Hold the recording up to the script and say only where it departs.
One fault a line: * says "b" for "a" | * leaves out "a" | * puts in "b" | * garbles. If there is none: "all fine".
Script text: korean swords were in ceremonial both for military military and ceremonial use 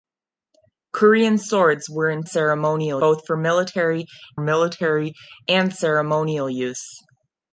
all fine